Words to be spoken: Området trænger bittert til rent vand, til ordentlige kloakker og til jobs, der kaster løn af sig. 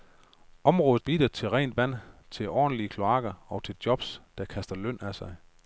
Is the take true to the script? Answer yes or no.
no